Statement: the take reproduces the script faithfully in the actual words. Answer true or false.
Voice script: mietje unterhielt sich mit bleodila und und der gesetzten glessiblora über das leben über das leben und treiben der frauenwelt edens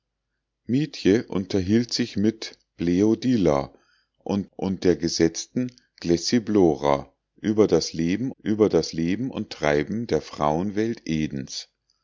true